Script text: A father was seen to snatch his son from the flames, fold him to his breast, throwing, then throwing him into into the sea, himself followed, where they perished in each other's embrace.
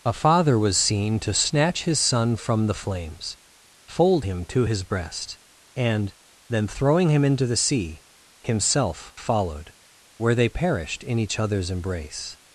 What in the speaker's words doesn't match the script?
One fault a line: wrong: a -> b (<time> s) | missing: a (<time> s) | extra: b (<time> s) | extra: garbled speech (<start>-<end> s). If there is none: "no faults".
wrong: throwing -> and (5.7 s)
missing: into (7.5 s)